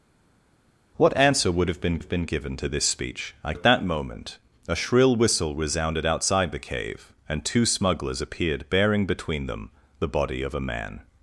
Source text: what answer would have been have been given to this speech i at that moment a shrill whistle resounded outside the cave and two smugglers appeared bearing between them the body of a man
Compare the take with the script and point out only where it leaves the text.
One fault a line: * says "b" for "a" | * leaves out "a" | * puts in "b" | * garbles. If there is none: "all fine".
all fine